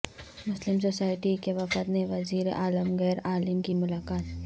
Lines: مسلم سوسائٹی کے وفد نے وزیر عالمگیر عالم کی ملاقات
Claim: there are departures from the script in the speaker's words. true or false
false